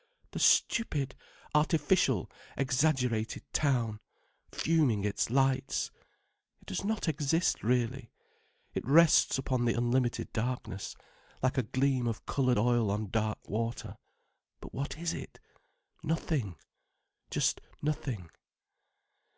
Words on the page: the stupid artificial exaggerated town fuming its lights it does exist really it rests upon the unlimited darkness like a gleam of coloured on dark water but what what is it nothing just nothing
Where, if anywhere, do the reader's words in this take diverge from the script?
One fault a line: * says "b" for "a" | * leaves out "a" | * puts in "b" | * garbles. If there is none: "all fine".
* puts in "not"
* puts in "oil"
* leaves out "what"